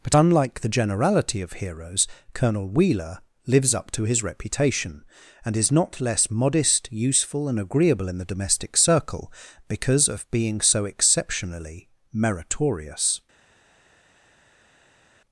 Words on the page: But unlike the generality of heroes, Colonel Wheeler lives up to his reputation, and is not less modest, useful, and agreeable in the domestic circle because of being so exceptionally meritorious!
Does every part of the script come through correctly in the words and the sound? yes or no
yes